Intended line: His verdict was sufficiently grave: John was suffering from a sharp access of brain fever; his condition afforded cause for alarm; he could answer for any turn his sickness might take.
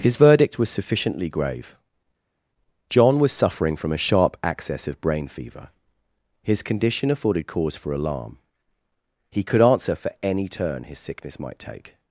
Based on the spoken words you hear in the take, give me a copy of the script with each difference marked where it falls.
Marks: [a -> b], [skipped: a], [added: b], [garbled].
His verdict was sufficiently grave: John was suffering from a sharp access of brain fever; his condition afforded cause for alarm; he could answer for any turn his sickness might take.